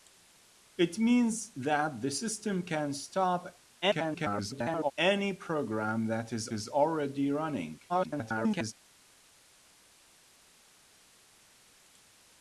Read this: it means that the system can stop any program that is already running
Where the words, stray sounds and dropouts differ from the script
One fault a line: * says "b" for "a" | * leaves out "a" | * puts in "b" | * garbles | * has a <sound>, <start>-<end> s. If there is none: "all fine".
* garbles
* puts in "is"
* garbles